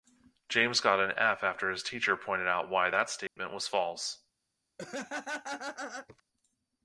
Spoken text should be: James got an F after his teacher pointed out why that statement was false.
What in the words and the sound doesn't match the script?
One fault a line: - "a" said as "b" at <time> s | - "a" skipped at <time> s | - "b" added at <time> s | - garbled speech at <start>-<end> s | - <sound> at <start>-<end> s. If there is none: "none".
- dropout at 3.3-3.4 s
- laugh at 4.8-6.2 s